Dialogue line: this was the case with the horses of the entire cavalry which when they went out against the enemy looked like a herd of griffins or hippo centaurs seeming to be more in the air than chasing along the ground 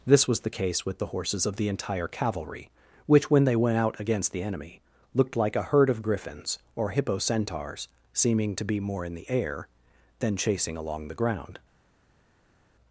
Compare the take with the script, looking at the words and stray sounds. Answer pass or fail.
pass